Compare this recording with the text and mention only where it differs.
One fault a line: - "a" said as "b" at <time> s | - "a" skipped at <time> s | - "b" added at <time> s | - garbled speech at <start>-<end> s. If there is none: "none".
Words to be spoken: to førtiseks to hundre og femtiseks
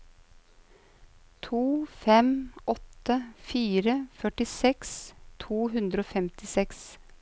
- "fem åtte fire" added at 2.0 s